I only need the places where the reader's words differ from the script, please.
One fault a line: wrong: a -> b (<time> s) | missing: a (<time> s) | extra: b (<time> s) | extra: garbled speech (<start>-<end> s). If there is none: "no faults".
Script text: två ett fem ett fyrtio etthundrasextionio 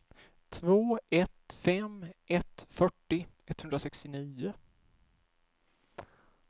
no faults